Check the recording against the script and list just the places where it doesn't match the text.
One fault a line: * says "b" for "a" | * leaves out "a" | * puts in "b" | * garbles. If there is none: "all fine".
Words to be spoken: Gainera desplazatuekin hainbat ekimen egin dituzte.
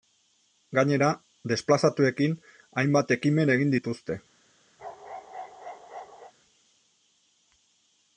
all fine